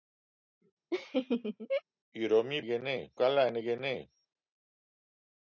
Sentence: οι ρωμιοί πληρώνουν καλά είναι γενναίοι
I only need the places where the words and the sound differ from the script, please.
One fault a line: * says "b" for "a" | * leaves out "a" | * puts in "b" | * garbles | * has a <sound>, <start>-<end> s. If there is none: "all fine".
* has a laugh, 0.9-1.8 s
* says "γενναίοι" for "πληρώνουν"